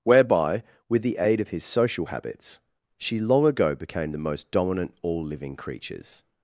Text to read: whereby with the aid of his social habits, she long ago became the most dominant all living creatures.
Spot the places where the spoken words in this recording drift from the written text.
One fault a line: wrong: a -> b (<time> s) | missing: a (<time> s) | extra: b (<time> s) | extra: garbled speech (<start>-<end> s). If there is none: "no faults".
no faults